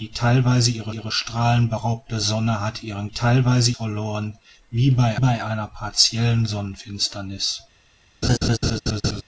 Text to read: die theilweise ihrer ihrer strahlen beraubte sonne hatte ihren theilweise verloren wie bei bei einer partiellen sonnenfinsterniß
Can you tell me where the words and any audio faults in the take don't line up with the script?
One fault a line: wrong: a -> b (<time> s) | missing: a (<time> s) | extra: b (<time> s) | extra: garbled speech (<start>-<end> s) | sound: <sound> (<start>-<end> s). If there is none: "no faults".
sound: laugh (8.2-9.2 s)